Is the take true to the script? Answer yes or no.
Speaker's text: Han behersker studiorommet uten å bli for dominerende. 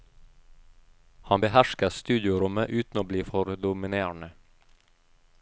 yes